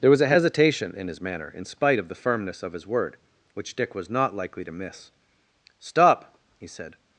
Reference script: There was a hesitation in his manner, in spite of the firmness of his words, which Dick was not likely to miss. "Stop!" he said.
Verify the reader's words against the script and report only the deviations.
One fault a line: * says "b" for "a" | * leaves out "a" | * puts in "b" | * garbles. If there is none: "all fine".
* says "word" for "words"